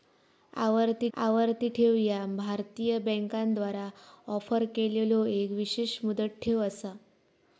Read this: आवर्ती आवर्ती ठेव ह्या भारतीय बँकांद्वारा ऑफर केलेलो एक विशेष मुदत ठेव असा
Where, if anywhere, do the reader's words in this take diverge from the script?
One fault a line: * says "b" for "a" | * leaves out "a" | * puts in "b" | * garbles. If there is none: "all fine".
all fine